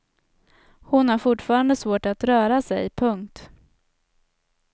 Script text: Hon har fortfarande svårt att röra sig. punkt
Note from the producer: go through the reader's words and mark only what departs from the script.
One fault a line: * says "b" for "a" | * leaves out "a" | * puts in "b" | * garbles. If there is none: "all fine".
all fine